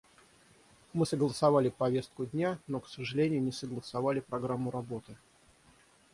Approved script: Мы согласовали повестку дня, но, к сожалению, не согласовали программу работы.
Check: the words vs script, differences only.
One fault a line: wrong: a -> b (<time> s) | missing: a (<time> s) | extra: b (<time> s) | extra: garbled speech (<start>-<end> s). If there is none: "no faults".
no faults